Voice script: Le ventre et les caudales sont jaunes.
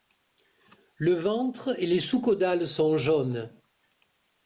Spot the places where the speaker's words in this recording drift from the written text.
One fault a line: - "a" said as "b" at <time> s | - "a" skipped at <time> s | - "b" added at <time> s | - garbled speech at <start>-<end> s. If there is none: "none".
- "sous" added at 2.0 s